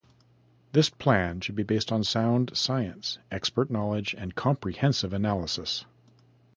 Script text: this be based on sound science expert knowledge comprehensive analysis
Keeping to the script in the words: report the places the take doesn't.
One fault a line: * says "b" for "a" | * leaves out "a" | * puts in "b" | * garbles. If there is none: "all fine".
* puts in "plan should"
* puts in "and"